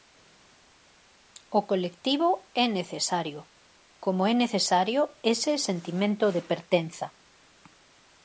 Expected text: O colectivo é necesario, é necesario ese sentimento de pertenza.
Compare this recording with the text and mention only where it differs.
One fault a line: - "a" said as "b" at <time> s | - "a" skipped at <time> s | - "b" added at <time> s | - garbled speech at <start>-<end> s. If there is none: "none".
- "como" added at 4.0 s